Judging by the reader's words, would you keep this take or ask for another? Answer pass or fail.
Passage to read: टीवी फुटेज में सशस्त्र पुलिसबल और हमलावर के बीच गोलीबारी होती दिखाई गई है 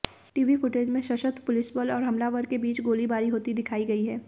pass